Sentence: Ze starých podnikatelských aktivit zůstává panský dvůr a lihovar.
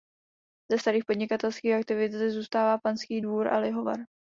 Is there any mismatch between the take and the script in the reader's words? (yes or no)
yes